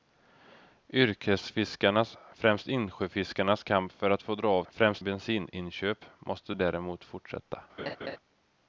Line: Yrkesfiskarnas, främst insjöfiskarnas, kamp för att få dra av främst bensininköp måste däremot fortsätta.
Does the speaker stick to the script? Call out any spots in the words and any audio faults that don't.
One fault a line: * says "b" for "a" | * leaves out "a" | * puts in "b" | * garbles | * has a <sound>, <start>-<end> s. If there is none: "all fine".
* has a laugh, 7.8-8.2 s